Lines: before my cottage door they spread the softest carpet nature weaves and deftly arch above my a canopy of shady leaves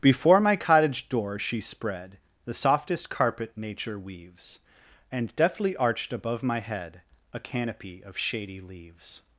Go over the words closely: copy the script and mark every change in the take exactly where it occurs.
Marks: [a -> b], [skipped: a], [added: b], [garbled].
before my cottage door [they -> she] spread the softest carpet nature weaves and deftly [arch -> arched] above my [added: head] a canopy of shady leaves